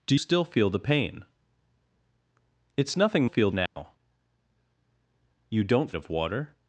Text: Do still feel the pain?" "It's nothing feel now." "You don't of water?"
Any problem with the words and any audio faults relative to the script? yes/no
yes